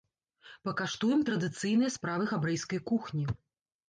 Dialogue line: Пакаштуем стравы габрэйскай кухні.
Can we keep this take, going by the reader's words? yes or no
no